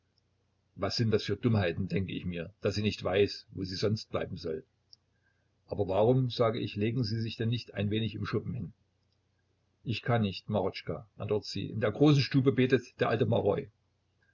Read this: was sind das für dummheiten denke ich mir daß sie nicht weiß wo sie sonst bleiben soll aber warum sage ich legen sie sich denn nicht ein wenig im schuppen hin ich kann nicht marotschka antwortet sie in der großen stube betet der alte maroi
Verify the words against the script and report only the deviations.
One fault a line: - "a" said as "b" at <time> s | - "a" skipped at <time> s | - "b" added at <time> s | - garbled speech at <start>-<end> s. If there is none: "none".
none